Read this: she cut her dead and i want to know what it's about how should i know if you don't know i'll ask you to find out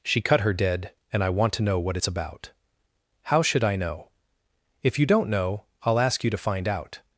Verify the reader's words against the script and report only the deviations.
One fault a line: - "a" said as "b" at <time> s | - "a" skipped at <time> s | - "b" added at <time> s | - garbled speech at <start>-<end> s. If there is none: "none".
none